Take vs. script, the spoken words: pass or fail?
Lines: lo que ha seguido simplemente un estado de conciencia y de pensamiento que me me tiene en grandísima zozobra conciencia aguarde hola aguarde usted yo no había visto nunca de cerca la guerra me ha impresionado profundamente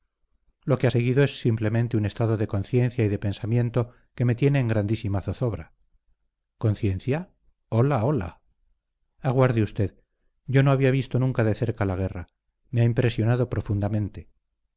fail